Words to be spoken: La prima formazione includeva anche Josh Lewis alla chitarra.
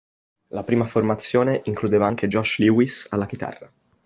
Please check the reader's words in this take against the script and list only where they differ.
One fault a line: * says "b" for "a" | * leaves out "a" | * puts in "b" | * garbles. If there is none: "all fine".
all fine